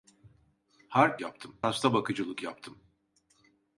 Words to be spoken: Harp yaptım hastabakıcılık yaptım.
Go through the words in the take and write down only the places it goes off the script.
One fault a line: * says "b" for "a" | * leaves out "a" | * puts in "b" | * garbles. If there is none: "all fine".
all fine